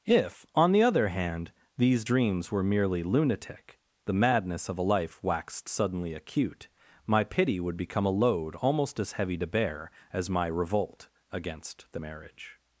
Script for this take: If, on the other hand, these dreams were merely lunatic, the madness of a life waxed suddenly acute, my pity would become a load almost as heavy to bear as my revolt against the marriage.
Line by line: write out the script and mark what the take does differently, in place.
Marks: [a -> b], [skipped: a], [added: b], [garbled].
If, on the other hand, these dreams were merely lunatic, the madness of a life waxed suddenly acute, my pity would become a load almost as heavy to bear as my revolt against the marriage.